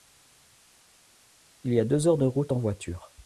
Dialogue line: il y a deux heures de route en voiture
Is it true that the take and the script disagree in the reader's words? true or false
false